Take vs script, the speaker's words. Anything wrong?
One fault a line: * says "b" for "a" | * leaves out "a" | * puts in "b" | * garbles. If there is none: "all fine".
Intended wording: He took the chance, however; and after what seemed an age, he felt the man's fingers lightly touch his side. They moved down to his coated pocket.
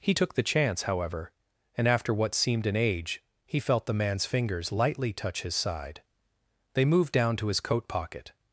* says "coat" for "coated"